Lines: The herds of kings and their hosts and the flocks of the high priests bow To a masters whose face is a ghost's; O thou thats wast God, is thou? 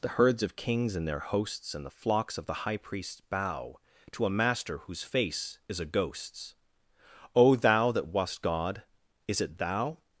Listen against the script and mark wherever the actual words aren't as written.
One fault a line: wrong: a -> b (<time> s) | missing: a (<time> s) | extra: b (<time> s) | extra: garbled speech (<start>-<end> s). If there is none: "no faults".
wrong: masters -> master (4.3 s)
wrong: thats -> that (7.9 s)
extra: it (9.4 s)